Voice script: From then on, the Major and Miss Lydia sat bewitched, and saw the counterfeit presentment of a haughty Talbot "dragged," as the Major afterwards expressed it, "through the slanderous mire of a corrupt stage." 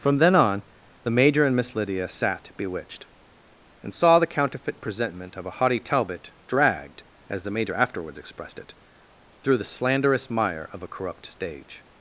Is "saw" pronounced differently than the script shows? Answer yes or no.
no